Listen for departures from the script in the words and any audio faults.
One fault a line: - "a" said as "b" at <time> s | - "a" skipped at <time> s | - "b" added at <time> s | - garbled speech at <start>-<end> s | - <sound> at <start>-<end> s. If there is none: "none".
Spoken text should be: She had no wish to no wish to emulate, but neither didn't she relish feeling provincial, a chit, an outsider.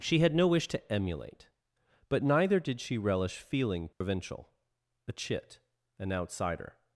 - "no wish to" skipped at 0.9 s
- "didn't" said as "did" at 2.6 s
- dropout at 3.9-4.0 s